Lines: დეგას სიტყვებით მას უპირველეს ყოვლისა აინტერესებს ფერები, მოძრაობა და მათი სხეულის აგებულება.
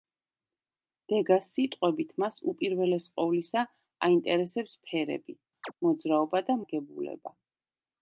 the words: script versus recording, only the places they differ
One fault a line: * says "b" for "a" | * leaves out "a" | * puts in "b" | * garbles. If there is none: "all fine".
* leaves out "მათი სხეულის"